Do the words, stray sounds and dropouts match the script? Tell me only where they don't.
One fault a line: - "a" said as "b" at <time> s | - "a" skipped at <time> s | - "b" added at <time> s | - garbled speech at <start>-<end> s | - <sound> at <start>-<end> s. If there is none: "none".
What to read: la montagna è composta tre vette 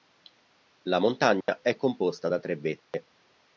- dropout at 1.4-1.5 s
- "da" added at 2.3 s
- dropout at 2.8-2.9 s